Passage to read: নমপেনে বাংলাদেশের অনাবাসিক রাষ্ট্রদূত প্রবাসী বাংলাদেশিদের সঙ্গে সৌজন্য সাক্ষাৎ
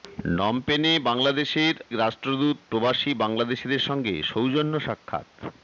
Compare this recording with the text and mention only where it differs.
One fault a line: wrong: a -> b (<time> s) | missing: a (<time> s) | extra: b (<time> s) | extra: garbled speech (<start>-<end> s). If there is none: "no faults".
missing: অনাবাসিক (1.7 s)